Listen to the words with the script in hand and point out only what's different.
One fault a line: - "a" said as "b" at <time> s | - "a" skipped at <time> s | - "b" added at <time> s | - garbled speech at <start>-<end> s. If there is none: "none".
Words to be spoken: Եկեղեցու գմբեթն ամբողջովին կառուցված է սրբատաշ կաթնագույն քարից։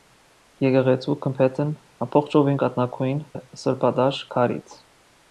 - "կառուցված" said as "կաթնագույն" at 2.6 s
- "կաթնագույն" skipped at 4.2 s